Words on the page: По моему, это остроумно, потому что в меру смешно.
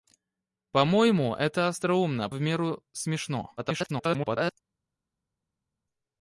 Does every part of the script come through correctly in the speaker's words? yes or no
no